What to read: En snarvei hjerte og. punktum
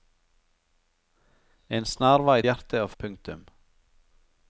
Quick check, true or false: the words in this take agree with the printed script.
true